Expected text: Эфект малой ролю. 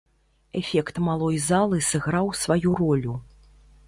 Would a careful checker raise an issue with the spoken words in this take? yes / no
yes